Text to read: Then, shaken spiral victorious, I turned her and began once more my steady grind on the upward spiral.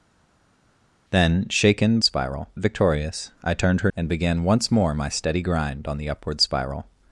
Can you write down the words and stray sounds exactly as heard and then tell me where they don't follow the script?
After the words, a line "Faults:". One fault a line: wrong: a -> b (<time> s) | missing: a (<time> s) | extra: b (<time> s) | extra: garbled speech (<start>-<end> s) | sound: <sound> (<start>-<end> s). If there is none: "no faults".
Then, shaken spiral victorious, I turned her and began once more my steady grind on the upward spiral.
Faults:
no faults